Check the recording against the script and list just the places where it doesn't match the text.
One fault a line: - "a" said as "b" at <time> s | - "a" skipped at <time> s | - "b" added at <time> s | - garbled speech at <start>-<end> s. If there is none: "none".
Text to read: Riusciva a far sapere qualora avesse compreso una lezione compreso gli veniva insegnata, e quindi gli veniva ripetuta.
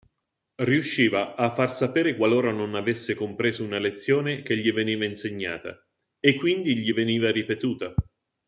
- "non" added at 2.5 s
- "compreso" said as "che" at 4.4 s